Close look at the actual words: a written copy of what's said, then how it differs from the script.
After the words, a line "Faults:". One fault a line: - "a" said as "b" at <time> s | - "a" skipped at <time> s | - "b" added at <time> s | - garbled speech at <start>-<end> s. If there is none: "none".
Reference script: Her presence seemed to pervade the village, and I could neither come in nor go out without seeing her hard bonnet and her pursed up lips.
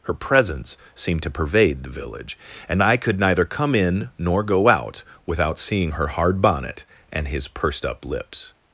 Her presence seemed to pervade the village, and I could neither come in nor go out without seeing her hard bonnet and his pursed up lips.
Faults:
- "her" said as "his" at 7.3 s